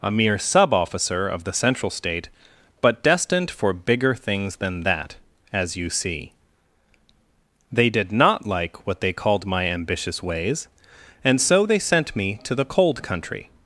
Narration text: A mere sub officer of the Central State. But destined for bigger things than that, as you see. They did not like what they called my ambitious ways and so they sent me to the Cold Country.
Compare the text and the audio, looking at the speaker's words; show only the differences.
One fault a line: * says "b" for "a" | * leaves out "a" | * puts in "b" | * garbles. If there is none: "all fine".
all fine